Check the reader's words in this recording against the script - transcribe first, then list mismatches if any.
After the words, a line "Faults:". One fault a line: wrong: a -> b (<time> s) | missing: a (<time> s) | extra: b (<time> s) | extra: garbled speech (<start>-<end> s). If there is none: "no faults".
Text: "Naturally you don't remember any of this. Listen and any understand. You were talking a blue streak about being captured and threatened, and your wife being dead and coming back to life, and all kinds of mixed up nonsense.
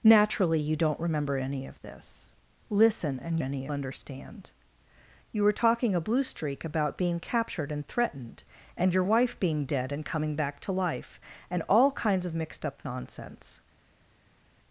"Naturally you don't remember any of this. Listen and any understand. You were talking a blue streak about being captured and threatened, and your wife being dead and coming back to life, and all kinds of mixed up nonsense.
Faults:
no faults